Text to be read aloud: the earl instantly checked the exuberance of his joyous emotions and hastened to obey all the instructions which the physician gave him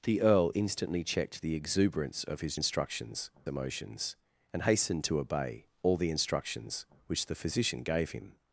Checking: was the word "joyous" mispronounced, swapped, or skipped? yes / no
yes